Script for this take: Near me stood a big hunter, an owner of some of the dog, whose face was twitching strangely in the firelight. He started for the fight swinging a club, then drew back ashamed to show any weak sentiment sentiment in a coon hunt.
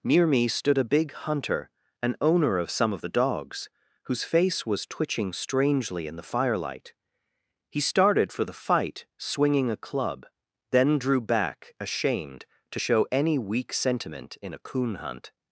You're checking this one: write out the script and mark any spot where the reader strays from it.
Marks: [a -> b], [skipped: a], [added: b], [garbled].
Near me stood a big hunter, an owner of some of the [dog, -> dogs] whose face was twitching strangely in the firelight. He started for the fight swinging a club, then drew back ashamed to show any weak sentiment [skipped: sentiment] in a coon hunt.